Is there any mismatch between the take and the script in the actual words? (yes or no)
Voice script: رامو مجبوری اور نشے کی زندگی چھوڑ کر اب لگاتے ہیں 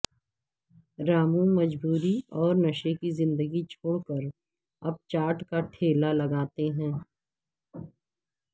yes